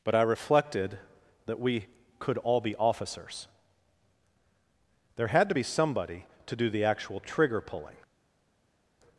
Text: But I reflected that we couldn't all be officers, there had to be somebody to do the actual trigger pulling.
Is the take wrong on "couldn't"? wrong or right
wrong